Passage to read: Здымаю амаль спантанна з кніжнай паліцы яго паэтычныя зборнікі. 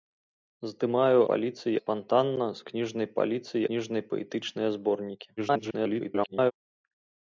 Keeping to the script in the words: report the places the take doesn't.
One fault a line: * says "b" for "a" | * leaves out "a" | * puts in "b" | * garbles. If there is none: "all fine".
* says "паліцы" for "амаль"
* says "кніжнай" for "яго"
* garbles